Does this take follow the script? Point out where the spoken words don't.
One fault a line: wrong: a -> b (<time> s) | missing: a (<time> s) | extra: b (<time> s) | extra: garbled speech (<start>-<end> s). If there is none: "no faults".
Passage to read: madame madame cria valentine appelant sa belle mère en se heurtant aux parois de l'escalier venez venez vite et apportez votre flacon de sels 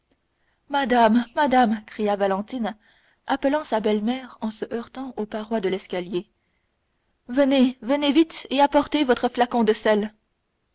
no faults